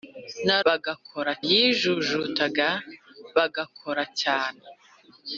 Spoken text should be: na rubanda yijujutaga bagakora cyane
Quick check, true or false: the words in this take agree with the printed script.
false